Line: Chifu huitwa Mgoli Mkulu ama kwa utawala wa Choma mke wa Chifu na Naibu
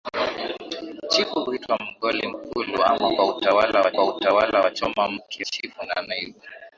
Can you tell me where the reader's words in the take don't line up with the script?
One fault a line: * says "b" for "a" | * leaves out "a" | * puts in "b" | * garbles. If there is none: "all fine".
* puts in "kwa utawala wa"
* leaves out "wa"